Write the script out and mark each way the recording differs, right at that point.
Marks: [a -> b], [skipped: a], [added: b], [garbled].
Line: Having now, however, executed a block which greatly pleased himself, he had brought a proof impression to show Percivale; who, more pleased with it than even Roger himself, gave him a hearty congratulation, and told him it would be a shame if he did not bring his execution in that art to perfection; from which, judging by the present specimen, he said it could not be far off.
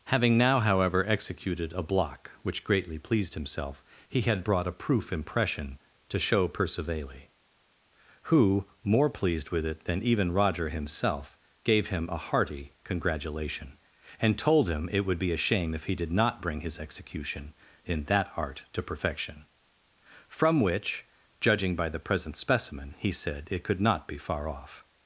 Having now, however, executed a block which greatly pleased himself, he had brought a proof impression to show Percivale; who, more pleased with it than even Roger himself, gave him a hearty congratulation, and told him it would be a shame if he did not bring his execution in that art to perfection; from which, judging by the present specimen, he said it could not be far off.